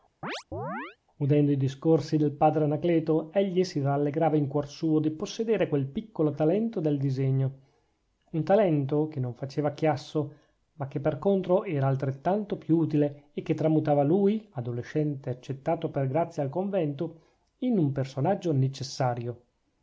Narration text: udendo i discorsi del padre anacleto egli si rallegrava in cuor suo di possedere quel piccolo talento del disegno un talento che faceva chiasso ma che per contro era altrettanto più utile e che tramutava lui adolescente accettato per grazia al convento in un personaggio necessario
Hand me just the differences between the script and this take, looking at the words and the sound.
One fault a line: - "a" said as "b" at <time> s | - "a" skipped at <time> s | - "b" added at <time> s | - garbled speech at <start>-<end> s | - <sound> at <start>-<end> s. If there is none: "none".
- chirp at 0.2-1.0 s
- "non" added at 9.2 s